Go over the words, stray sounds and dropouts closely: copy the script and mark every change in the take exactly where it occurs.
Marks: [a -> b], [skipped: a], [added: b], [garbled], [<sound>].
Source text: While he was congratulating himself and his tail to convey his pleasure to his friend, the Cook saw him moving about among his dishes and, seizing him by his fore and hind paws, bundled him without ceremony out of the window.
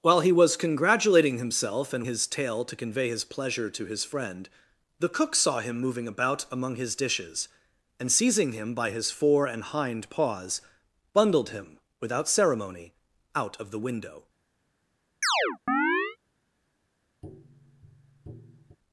While he was congratulating himself and his tail to convey his pleasure to his friend, the Cook saw him moving about among his dishes and, seizing him by his fore and hind paws, bundled him without ceremony out of the window. [chirp] [tap]